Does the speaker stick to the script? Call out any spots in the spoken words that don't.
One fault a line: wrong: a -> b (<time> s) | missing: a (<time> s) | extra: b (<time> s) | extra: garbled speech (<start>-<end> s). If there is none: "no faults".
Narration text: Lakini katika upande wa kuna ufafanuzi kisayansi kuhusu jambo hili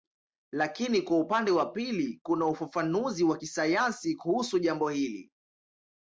wrong: katika -> kwa (1.0 s)
extra: pili (1.7 s)
extra: wa (3.2 s)